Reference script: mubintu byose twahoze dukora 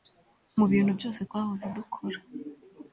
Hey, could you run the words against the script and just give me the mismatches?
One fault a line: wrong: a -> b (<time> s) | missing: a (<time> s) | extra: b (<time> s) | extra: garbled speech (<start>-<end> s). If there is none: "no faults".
no faults